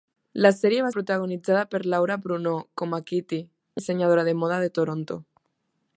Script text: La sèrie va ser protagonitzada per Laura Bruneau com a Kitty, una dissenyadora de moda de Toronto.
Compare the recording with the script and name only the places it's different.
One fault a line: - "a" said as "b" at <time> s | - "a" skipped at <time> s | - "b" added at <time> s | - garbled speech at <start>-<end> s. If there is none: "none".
- "ser" skipped at 0.9 s
- "una" skipped at 3.4 s